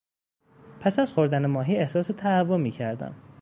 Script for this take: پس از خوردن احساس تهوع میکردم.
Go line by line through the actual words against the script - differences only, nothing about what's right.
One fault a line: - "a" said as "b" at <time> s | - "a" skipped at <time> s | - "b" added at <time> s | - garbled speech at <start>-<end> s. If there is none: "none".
- "ماهی" added at 1.4 s